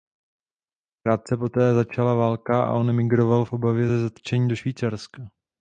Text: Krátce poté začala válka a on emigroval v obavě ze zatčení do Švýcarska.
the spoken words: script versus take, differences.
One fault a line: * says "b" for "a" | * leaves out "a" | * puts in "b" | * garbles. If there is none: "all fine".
all fine